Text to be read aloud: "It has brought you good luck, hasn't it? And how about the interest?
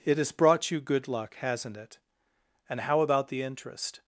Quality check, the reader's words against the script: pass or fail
pass